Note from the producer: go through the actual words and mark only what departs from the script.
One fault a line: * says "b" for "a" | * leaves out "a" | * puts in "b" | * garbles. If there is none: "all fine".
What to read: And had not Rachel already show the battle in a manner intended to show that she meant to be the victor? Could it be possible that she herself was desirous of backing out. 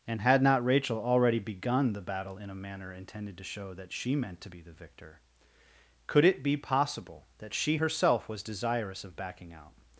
* says "begun" for "show"